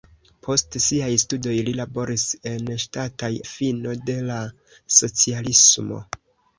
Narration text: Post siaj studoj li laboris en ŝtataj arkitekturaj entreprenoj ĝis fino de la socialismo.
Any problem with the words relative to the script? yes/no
yes